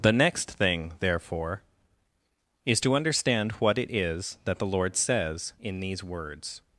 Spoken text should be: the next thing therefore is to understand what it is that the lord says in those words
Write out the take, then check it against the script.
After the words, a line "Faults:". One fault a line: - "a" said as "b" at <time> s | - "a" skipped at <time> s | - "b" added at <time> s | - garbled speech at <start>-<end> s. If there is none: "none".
the next thing therefore is to understand what it is that the lord says in these words
Faults:
- "those" said as "these" at 5.8 s